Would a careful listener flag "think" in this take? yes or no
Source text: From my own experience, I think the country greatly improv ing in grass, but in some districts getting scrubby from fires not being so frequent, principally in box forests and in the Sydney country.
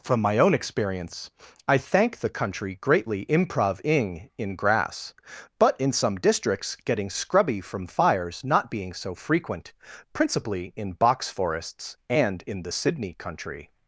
yes